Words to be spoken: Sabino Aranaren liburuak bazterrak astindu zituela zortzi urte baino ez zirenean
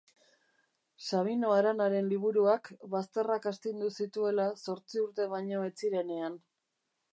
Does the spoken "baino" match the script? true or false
true